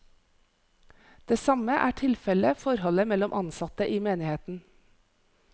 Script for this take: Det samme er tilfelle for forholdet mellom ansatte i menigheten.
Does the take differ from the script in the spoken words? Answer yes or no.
yes